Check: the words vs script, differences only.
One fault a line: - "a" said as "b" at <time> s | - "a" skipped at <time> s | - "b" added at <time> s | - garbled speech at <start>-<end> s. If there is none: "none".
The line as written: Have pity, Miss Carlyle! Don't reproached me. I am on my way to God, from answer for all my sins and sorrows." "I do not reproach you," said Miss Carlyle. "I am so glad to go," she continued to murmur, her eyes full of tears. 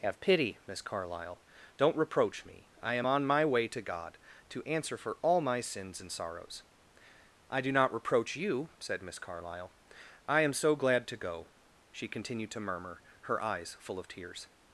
- "reproached" said as "reproach" at 1.9 s
- "from" said as "to" at 4.5 s